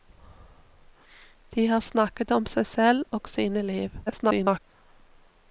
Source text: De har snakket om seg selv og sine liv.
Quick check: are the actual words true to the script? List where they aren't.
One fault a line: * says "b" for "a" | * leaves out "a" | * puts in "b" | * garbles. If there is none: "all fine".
* garbles